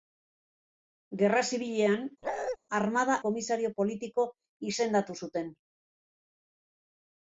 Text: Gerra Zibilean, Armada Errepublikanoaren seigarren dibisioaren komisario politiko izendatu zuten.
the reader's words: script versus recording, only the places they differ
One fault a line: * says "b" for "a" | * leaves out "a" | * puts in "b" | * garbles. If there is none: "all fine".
* leaves out "Errepublikanoaren seigarren dibisioaren"